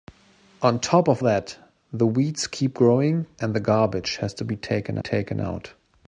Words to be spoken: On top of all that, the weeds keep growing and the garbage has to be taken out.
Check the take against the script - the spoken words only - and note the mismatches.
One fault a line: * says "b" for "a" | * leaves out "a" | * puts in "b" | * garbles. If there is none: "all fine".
* leaves out "all"
* puts in "taken"